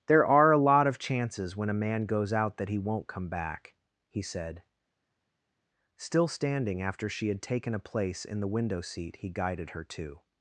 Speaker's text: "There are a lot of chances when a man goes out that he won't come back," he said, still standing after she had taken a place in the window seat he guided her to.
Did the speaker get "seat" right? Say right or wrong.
right